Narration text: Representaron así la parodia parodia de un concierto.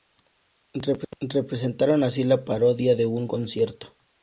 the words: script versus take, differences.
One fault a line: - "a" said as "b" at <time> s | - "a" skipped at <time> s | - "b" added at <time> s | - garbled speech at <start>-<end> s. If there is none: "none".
- "parodia" skipped at 3.0 s